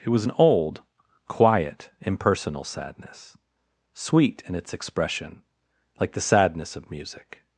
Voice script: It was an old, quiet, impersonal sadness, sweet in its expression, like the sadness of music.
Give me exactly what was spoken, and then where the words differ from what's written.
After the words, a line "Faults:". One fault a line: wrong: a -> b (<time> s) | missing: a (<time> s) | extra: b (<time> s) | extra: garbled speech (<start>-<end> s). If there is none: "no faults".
It was an old, quiet, impersonal sadness, sweet in its expression, like the sadness of music.
Faults:
no faults